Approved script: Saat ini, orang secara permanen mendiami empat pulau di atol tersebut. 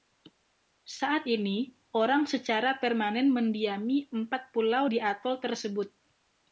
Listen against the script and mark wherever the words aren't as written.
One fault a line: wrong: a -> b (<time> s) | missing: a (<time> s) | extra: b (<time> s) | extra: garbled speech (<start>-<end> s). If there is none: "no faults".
no faults